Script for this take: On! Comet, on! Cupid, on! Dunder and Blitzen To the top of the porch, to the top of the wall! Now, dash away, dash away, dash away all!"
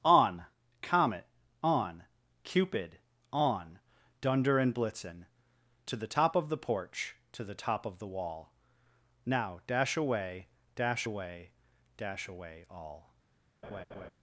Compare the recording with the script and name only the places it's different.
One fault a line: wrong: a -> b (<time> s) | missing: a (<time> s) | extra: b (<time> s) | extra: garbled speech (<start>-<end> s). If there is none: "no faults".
no faults